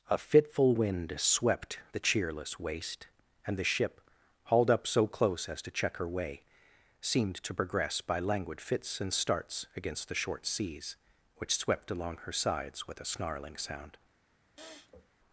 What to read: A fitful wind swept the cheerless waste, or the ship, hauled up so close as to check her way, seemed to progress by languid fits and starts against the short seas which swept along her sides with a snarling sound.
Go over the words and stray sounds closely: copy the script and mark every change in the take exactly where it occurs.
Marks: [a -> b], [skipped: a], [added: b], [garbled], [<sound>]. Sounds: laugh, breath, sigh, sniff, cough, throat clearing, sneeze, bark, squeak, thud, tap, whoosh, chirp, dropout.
A fitful wind swept the cheerless waste, [or -> and] the ship, hauled up so close as to check her way, seemed to progress by languid fits and starts against the short seas which swept along her sides with a snarling sound. [sniff]